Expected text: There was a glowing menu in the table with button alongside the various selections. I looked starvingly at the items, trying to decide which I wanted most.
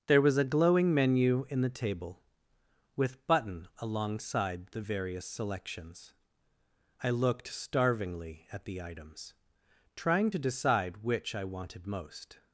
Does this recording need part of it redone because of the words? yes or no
no